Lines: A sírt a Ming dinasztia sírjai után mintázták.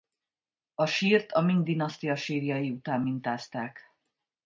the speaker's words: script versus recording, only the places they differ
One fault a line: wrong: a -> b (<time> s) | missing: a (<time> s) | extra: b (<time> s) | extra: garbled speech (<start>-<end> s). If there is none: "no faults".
no faults